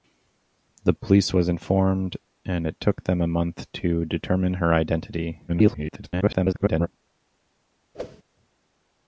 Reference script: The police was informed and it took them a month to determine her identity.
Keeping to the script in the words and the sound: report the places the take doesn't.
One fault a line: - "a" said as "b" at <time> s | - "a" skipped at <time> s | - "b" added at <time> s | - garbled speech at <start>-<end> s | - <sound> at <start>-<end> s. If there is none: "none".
- garbled speech at 5.5-6.9 s
- whoosh at 7.9-8.2 s